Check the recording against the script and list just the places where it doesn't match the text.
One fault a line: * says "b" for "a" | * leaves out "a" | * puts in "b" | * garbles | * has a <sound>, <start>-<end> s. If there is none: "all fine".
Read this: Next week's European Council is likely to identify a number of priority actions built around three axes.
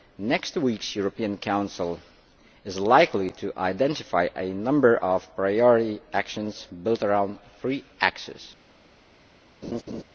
* has a laugh, 9.6-10.0 s